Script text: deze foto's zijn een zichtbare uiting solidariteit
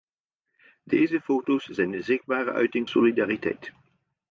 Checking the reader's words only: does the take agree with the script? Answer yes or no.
yes